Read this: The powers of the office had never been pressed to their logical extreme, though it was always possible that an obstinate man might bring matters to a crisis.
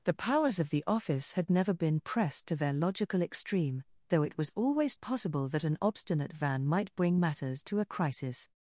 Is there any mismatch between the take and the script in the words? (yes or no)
yes